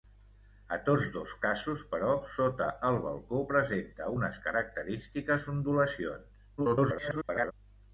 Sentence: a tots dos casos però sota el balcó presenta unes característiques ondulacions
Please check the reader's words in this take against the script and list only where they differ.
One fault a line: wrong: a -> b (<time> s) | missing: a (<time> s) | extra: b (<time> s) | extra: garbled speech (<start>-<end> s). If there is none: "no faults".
extra: garbled speech (6.6-7.5 s)